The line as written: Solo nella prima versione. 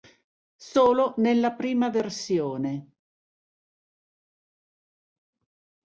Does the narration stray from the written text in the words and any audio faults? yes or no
no